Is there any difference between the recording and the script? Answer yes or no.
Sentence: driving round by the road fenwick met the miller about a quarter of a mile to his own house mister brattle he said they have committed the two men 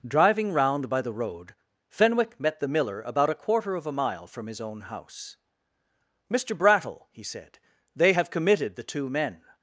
yes